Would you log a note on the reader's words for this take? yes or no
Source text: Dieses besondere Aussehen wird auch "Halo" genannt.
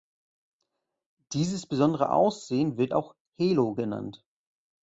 no